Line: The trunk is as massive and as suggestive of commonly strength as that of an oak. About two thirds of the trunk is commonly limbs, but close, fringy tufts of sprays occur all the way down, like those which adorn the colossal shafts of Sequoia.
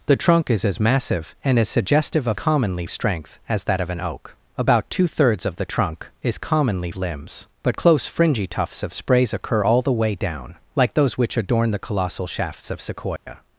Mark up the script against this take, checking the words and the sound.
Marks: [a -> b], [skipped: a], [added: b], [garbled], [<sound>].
The trunk is as massive and as suggestive of commonly strength as that of an oak. About two thirds of the trunk is commonly limbs, but close, fringy tufts of sprays occur all the way down, like those which adorn the colossal shafts of Sequoia. [dropout]